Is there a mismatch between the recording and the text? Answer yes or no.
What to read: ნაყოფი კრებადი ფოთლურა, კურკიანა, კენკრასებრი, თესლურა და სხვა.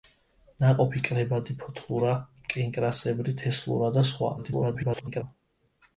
yes